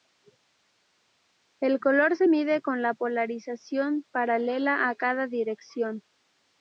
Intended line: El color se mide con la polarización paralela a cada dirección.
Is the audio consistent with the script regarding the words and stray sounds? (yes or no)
yes